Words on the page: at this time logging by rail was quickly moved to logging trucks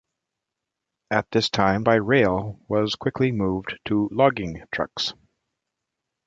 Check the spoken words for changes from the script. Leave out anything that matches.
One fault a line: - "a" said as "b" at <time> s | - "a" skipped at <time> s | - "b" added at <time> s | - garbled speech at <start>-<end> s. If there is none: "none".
- "logging" skipped at 1.9 s